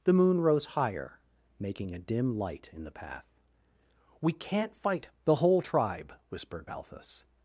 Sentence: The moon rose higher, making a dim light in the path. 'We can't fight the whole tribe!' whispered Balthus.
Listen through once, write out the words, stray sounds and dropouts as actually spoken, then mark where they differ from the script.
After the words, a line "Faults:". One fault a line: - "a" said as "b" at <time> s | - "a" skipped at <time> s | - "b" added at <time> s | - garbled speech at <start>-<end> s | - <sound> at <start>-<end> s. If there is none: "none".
The moon rose higher, making a dim light in the path. 'We can't fight the whole tribe!' whispered Balthus.
Faults:
none